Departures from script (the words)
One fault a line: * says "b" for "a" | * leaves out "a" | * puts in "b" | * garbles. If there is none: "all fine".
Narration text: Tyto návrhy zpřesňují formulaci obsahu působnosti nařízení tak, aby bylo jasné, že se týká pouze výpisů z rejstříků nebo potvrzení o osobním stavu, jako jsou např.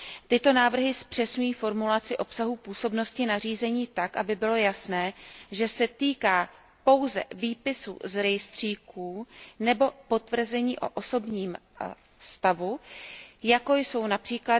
all fine